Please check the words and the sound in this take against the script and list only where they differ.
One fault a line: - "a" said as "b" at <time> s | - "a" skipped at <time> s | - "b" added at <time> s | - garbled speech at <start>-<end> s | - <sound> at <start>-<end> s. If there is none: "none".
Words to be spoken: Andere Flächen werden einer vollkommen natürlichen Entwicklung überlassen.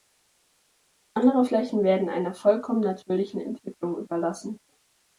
none